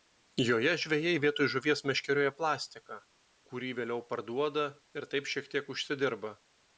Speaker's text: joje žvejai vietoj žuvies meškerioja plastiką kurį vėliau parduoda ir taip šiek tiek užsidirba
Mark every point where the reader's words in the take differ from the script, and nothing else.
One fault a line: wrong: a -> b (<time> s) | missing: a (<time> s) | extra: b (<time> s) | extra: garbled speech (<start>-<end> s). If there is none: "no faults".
no faults